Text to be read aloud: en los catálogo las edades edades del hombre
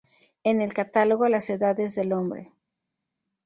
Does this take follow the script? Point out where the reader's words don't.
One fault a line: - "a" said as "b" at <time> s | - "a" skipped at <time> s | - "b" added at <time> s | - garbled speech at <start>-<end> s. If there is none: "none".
- "los" said as "el" at 0.6 s
- "edades" skipped at 1.9 s